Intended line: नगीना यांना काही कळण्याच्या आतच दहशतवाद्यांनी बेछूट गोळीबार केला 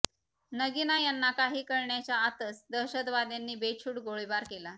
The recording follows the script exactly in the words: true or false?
true